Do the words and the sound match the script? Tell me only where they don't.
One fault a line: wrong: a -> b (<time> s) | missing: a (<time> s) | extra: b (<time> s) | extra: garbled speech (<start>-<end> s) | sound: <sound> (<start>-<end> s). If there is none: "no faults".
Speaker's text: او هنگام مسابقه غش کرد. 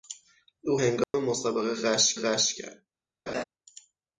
sound: dropout (1.0-1.1 s)
extra: غش (2.2 s)
sound: laugh (3.3-3.4 s)